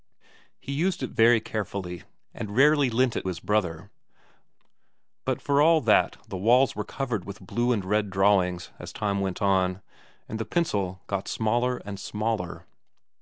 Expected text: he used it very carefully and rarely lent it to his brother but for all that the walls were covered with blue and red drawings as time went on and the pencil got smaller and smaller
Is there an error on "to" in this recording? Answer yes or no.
yes